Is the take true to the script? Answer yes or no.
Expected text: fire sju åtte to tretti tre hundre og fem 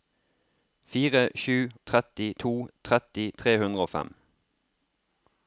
no